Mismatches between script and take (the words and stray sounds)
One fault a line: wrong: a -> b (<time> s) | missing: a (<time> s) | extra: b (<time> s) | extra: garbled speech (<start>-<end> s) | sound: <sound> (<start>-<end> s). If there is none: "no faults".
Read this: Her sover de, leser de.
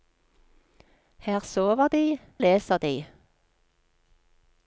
no faults